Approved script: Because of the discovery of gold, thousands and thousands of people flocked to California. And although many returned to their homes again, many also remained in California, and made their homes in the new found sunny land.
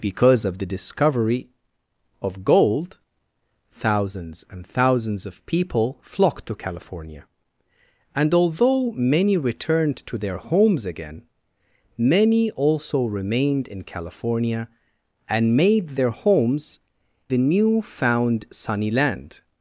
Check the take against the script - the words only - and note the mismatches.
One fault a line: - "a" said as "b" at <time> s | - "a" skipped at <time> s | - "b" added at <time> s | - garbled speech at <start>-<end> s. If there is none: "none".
- "in" skipped at 16.8 s